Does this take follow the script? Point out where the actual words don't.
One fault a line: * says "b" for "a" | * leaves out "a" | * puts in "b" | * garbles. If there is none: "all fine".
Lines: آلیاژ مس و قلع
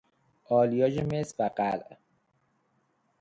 all fine